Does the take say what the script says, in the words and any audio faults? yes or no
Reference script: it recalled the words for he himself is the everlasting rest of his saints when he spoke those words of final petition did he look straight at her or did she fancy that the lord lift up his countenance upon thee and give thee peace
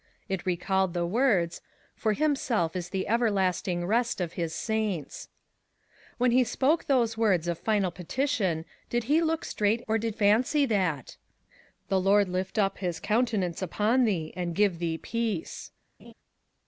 no